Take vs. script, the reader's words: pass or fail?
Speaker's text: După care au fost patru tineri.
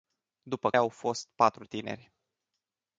fail